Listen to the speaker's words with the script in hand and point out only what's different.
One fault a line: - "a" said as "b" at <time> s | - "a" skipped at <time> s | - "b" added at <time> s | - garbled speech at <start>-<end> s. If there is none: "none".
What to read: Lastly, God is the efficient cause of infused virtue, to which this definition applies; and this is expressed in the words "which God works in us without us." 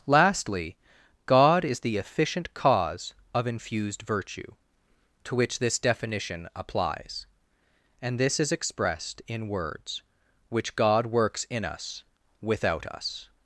- "the" skipped at 9.5 s